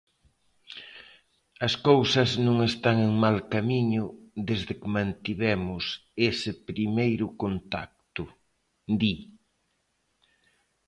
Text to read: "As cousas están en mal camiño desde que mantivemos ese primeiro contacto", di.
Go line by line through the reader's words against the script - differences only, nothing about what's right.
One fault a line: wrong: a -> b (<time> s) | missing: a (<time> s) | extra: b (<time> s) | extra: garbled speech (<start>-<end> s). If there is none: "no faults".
extra: non (2.5 s)